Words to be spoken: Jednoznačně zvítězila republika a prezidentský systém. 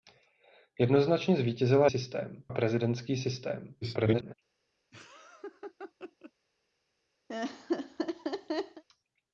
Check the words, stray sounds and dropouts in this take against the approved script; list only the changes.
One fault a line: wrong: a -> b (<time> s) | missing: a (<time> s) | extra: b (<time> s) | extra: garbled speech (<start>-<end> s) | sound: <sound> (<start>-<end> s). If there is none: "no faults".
wrong: republika -> systém (1.8 s)
extra: garbled speech (3.8-4.3 s)
sound: laugh (4.9-6.3 s)
sound: laugh (7.3-8.8 s)